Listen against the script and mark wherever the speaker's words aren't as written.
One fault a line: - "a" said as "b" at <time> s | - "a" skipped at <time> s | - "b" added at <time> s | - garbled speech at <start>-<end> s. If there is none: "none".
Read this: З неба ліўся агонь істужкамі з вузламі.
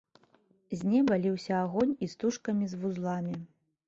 none